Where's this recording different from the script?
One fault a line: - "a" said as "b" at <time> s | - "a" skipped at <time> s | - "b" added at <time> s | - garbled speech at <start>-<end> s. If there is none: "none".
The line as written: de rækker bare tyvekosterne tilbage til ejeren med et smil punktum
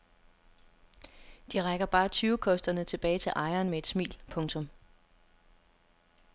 none